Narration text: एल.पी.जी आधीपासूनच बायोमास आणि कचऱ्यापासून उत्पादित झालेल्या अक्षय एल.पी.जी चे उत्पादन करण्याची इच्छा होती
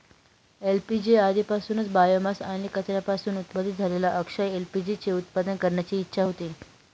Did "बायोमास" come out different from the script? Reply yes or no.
no